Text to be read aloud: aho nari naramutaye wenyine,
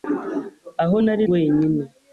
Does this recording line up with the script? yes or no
no